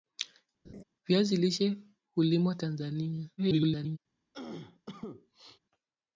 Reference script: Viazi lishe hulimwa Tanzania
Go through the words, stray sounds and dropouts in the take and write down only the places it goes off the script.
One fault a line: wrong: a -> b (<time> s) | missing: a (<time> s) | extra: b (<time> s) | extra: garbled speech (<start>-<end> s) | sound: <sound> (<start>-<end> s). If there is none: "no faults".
sound: laugh (0.6-0.8 s)
extra: garbled speech (3.4-4.0 s)
sound: cough (4.3-5.6 s)